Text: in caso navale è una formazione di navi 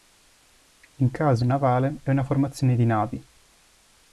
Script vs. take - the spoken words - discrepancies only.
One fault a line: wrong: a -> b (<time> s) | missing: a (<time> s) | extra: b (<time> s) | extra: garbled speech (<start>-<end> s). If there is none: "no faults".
no faults